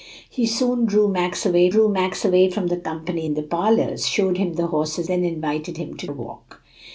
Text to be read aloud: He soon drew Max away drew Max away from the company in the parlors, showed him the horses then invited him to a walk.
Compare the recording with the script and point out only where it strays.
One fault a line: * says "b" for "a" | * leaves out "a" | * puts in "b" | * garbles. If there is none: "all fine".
all fine